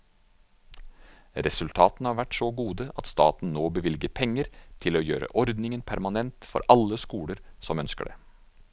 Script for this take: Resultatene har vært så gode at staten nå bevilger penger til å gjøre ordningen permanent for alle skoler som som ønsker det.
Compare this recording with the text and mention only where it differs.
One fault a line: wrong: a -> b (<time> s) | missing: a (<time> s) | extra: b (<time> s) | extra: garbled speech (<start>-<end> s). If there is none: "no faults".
missing: som (7.8 s)